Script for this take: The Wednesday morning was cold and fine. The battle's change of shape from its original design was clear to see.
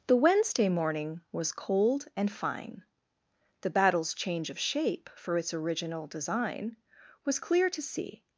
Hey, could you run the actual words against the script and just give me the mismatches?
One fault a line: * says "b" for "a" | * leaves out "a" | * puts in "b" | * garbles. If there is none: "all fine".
* says "for" for "from"